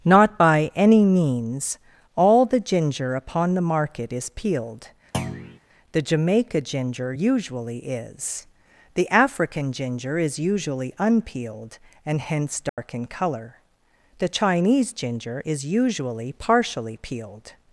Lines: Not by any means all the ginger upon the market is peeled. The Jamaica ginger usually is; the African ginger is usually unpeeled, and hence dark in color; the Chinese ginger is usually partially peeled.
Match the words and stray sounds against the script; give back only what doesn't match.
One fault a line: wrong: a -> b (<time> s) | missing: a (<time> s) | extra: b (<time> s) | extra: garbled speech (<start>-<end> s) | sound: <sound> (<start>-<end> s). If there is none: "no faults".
sound: thud (5.1-5.6 s)
sound: dropout (12.7-12.8 s)